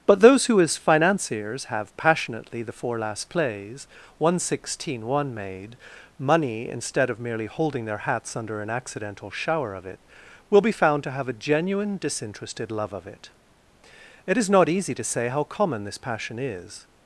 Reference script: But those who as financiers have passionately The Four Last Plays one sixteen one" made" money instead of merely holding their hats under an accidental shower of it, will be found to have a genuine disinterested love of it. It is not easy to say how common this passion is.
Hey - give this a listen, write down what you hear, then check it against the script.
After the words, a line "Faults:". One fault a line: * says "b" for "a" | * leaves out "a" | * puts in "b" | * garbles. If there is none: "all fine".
But those who as financiers have passionately The Four Last Plays one sixteen one" made" money instead of merely holding their hats under an accidental shower of it, will be found to have a genuine disinterested love of it. It is not easy to say how common this passion is.
Faults:
all fine